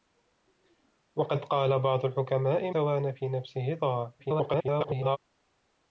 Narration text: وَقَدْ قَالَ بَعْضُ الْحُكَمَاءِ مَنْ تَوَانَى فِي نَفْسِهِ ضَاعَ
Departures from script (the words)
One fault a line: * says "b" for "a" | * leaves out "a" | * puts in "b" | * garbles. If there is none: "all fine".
* leaves out "مَنْ"
* garbles